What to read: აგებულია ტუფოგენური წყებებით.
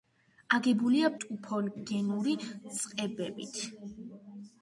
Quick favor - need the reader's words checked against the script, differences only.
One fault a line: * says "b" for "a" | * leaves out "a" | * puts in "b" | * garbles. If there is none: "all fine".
all fine